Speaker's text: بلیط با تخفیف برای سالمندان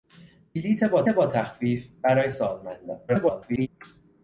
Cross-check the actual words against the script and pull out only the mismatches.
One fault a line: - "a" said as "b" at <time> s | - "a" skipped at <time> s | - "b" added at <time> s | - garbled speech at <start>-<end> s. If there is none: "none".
- "با" added at 1.1 s
- garbled speech at 3.1-3.7 s